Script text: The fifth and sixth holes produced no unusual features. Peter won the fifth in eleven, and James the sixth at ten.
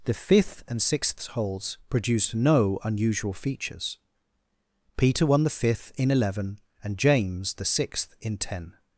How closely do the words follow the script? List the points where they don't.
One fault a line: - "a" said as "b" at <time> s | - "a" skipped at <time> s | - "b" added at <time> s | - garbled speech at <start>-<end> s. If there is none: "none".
- "at" said as "in" at 8.2 s